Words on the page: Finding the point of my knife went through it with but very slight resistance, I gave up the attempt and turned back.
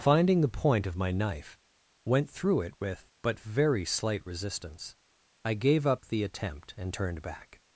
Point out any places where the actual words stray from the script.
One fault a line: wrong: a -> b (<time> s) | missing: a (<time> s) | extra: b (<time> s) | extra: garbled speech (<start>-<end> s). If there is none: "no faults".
no faults